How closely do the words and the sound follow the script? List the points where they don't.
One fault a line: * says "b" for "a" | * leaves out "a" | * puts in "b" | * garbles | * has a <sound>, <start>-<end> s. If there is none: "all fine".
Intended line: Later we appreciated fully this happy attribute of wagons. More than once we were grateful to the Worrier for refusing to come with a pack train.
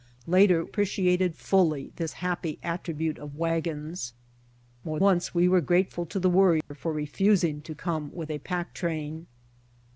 * leaves out "we"
* leaves out "than"
* has a dropout, 6.6-6.7 s